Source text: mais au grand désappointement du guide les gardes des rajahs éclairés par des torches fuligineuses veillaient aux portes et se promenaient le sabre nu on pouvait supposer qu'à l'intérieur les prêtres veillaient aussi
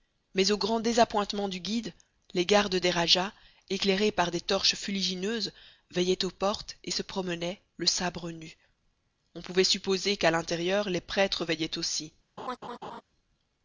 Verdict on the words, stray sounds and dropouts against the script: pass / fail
fail